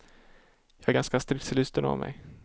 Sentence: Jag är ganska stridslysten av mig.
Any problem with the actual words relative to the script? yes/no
no